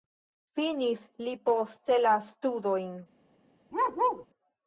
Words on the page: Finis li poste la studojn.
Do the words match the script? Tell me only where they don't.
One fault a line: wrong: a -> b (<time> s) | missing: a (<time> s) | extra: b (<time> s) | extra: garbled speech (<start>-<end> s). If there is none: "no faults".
no faults